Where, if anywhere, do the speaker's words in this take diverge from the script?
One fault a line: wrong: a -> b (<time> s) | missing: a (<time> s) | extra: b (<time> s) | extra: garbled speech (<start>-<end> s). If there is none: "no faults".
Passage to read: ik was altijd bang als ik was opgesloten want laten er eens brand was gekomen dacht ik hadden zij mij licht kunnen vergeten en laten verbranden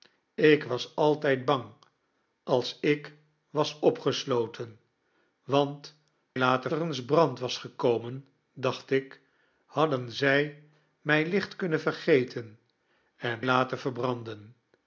no faults